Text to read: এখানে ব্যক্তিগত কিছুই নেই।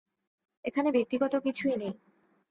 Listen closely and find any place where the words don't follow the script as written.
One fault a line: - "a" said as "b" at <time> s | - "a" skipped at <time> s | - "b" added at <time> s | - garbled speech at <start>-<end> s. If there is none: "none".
none